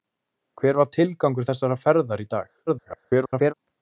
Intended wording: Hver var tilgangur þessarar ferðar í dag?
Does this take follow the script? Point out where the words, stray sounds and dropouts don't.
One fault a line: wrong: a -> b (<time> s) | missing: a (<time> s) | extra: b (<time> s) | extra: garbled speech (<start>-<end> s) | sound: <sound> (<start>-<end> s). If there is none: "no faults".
extra: garbled speech (2.7-3.5 s)